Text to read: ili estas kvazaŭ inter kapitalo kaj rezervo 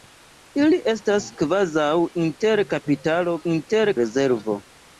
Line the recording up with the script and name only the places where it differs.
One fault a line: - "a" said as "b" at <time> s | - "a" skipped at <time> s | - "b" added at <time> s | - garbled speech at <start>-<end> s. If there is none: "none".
- "kaj" said as "inter" at 3.5 s